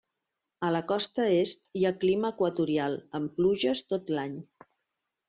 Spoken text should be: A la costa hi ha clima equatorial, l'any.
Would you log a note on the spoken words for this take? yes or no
yes